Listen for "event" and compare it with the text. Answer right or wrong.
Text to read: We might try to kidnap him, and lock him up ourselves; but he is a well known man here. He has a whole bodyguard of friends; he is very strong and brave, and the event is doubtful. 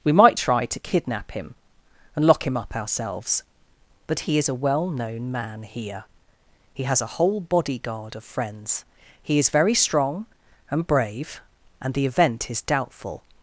right